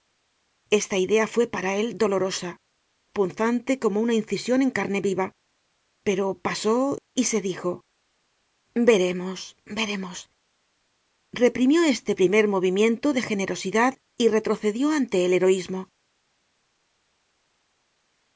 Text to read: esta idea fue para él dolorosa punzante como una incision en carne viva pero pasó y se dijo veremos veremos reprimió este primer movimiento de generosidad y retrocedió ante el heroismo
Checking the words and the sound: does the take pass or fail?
pass